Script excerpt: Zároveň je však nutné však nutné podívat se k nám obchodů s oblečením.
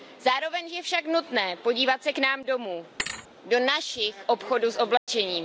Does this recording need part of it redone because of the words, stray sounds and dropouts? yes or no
yes